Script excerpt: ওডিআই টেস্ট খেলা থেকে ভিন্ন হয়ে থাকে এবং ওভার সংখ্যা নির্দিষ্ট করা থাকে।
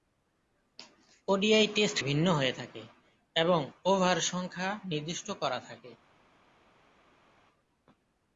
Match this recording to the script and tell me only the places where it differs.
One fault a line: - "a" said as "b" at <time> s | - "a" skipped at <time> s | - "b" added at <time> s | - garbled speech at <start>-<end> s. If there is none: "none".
- "খেলা থেকে" skipped at 2.0 s